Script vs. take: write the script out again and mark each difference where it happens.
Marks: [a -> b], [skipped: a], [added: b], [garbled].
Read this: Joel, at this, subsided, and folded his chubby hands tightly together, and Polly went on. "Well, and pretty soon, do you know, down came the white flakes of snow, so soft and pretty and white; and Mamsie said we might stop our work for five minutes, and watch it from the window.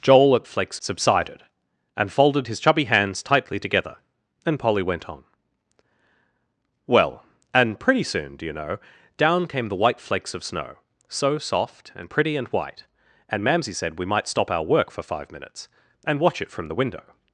Joel, at [this, -> flakes] subsided, and folded his chubby hands tightly together, and Polly went on. "Well, and pretty soon, do you know, down came the white flakes of snow, so soft and pretty and white; and Mamsie said we might stop our work for five minutes, and watch it from the window.